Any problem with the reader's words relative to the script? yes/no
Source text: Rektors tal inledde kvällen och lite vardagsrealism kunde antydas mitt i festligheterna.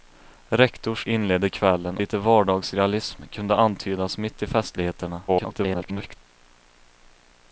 yes